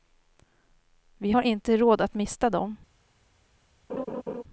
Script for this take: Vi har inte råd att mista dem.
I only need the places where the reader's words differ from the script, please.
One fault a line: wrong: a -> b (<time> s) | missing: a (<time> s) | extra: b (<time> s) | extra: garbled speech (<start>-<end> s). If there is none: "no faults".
no faults